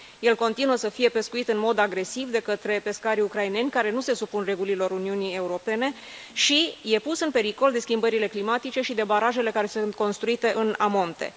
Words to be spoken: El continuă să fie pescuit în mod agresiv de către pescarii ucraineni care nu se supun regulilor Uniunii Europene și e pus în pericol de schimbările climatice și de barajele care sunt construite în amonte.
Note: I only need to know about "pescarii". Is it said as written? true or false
true